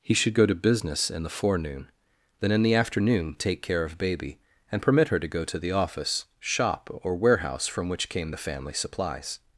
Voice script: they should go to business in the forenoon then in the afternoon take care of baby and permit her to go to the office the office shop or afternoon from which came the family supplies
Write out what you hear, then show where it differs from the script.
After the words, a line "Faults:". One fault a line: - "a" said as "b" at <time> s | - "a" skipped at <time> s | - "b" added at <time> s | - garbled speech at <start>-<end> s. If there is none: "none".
he should go to business in the forenoon then in the afternoon take care of baby and permit her to go to the office shop or warehouse from which came the family supplies
Faults:
- "they" said as "he" at 0.0 s
- "the office" skipped at 6.2 s
- "afternoon" said as "warehouse" at 7.2 s